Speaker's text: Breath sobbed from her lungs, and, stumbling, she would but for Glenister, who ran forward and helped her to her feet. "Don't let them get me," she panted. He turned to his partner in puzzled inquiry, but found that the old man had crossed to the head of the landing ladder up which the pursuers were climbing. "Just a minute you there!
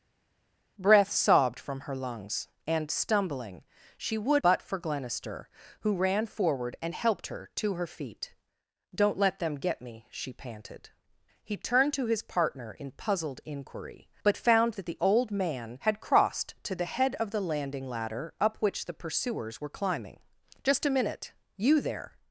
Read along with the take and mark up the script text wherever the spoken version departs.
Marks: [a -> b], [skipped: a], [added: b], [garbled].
Breath sobbed from her lungs, and, stumbling, she would but for Glenister, who ran forward and helped her to her feet. "Don't let them get me," she panted. He turned to his partner in puzzled inquiry, but found that the old man had crossed to the head of the landing ladder up which the pursuers were climbing. "Just a minute you there!